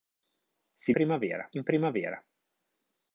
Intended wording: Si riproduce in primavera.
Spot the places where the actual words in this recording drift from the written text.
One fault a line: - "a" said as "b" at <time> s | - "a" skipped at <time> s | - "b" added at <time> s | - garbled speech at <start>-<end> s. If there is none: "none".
- "riproduce" said as "primavera" at 0.9 s